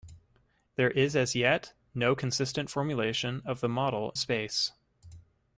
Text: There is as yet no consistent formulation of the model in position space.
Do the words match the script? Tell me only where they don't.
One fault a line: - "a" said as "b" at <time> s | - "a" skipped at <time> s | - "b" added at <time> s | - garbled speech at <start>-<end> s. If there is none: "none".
- "in position" skipped at 4.2 s